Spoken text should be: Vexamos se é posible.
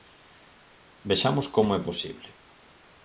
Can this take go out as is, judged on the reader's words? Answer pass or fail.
fail